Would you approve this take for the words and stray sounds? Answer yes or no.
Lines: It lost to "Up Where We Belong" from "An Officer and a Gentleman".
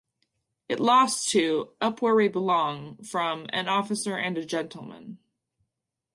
yes